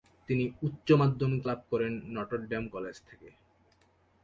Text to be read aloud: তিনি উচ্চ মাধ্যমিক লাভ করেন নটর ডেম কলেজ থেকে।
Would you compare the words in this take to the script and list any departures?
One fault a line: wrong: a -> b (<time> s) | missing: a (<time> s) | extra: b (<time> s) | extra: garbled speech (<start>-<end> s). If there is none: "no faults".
no faults